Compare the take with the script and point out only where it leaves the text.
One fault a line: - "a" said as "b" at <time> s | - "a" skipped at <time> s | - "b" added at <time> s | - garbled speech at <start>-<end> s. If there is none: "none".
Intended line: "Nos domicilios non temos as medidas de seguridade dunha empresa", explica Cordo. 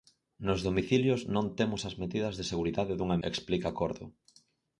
- "empresa" skipped at 3.2 s